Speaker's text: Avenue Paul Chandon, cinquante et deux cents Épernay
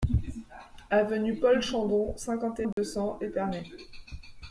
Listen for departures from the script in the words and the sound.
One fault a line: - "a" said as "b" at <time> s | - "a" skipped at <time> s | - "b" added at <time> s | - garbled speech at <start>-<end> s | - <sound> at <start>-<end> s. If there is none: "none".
- dropout at 2.7-2.8 s